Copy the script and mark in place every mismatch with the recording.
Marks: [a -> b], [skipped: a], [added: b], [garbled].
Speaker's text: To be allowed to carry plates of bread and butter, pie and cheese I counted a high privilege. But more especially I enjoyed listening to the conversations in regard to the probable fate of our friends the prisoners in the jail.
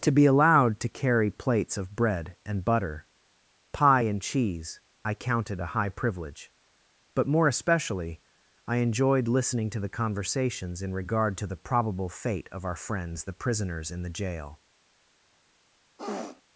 To be allowed to carry plates of bread and butter, pie and cheese I counted a high privilege. But more especially I enjoyed listening to the conversations in regard to the probable fate of our friends the prisoners in the jail.